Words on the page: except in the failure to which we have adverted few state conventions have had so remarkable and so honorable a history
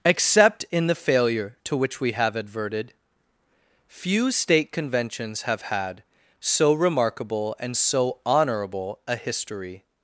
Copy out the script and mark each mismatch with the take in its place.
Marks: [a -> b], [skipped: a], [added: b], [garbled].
except in the failure to which we have adverted few state conventions have had so remarkable and so honorable a history